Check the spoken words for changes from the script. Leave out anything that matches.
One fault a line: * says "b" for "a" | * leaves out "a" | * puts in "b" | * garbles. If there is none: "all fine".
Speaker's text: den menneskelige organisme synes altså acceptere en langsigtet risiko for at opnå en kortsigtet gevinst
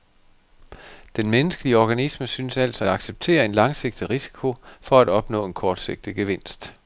all fine